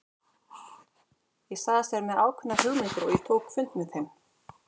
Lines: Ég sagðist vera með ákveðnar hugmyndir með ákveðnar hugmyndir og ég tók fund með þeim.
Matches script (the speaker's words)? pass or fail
fail